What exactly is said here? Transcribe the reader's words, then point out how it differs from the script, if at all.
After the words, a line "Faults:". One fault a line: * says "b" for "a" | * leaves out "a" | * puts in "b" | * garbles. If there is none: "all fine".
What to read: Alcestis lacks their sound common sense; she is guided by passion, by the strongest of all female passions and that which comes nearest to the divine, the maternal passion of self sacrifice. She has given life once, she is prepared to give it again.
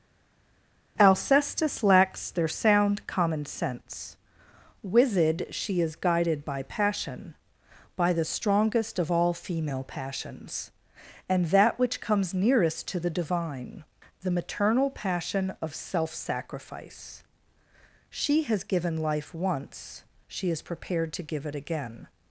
Alcestis lacks their sound common sense; wizard she is guided by passion, by the strongest of all female passions and that which comes nearest to the divine, the maternal passion of self sacrifice. She has given life once, she is prepared to give it again.
Faults:
* puts in "wizard"